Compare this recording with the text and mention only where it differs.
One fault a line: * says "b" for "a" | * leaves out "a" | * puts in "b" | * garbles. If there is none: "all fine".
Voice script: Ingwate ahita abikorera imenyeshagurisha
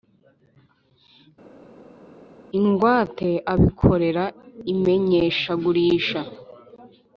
* leaves out "ahita"